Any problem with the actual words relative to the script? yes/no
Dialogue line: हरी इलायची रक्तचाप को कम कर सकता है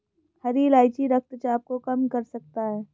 no